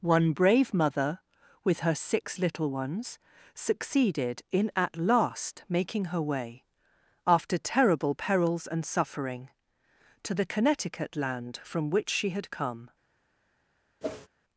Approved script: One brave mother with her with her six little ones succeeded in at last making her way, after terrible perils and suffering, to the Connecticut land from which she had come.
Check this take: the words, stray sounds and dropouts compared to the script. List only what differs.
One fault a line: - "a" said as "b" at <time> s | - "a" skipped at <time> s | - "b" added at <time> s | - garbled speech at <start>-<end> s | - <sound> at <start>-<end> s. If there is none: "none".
- "with her" skipped at 1.9 s
- whoosh at 14.0-14.3 s